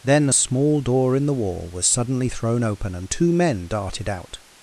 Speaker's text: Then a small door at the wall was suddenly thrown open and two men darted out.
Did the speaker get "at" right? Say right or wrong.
wrong